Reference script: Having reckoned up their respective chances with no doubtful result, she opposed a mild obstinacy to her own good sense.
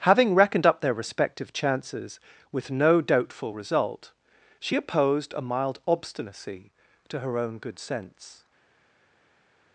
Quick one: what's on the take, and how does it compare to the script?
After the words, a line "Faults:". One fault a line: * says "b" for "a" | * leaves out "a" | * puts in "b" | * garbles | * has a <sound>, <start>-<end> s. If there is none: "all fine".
Having reckoned up their respective chances with no doubtful result, she opposed a mild obstinacy to her own good sense.
Faults:
all fine